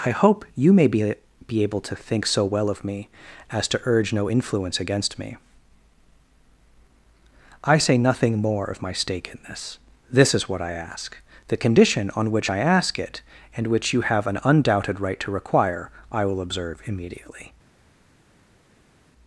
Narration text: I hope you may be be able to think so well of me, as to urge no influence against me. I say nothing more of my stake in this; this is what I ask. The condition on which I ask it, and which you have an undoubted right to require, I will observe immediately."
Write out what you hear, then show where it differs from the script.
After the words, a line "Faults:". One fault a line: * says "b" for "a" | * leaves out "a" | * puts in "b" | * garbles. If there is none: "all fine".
I hope you may be be able to think so well of me, as to urge no influence against me. I say nothing more of my stake in this; this is what I ask. The condition on which I ask it, and which you have an undoubted right to require, I will observe immediately."
Faults:
all fine